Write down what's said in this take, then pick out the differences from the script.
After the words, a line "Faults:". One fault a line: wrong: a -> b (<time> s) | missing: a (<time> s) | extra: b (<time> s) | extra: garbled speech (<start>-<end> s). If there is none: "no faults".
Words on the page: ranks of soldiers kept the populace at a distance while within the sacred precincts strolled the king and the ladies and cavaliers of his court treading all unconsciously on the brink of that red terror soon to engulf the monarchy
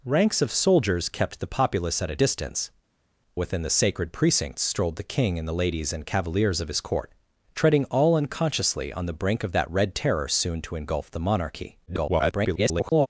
ranks of soldiers kept the populace at a distance within the sacred precincts strolled the king and the ladies and cavaliers of his court treading all unconsciously on the brink of that red terror soon to engulf the monarchy [garbled]
Faults:
missing: while (2.7 s)
extra: garbled speech (11.9-13.1 s)